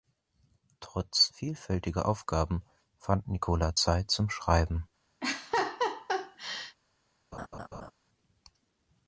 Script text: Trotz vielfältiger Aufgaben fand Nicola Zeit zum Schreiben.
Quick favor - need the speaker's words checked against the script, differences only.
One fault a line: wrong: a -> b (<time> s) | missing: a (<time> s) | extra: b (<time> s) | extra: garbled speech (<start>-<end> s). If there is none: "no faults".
no faults